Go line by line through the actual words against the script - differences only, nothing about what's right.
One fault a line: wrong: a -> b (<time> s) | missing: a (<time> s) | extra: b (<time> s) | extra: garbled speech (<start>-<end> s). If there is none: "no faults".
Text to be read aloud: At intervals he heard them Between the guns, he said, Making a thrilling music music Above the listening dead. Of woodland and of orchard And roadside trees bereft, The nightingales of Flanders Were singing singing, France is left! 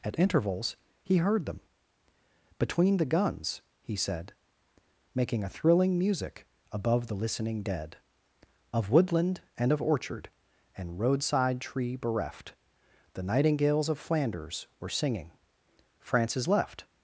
missing: music (6.5 s)
wrong: trees -> tree (11.6 s)
missing: singing (15.3 s)